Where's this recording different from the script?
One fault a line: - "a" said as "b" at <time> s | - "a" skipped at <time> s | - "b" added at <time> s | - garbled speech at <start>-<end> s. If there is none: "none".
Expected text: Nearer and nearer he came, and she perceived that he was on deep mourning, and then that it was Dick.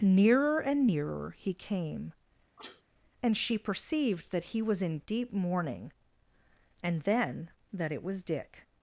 - "on" said as "in" at 4.8 s